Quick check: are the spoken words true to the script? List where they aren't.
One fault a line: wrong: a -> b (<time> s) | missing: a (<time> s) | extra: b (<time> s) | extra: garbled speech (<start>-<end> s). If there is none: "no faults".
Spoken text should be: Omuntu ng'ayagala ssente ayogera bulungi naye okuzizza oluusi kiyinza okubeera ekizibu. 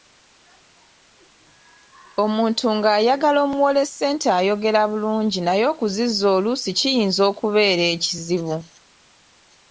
extra: omuwole (3.5 s)